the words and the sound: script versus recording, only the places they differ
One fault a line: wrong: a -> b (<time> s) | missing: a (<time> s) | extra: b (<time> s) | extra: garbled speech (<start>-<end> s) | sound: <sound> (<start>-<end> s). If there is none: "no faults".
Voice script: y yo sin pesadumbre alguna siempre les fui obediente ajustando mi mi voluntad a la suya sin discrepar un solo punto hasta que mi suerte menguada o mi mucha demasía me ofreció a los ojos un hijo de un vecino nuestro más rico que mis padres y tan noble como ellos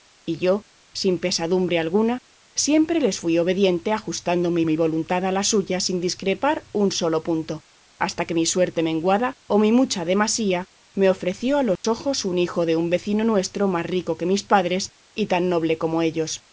sound: dropout (11.8-11.8 s)